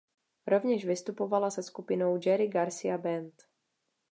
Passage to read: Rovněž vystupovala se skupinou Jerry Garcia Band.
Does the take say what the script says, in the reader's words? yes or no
yes